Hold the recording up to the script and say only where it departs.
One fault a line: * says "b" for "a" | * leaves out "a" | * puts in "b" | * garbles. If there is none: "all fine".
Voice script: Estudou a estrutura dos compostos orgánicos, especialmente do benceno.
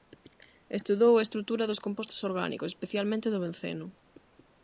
all fine